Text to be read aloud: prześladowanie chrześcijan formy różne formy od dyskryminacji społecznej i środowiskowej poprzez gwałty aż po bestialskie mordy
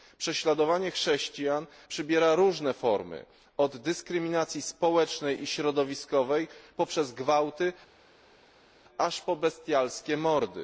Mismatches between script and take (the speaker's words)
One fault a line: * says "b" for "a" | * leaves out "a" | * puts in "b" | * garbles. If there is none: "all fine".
* says "przybiera" for "formy"